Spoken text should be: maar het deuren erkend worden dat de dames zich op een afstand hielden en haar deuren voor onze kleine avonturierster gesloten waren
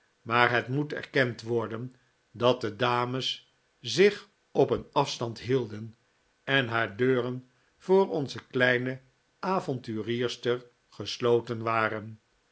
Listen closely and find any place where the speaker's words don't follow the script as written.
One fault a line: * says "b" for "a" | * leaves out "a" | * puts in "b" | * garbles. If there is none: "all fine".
* says "moet" for "deuren"